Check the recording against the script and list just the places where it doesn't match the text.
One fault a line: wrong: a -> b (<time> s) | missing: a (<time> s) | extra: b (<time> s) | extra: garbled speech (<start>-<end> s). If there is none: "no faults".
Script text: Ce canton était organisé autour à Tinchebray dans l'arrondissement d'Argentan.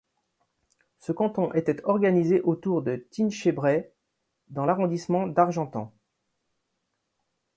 wrong: à -> de (2.8 s)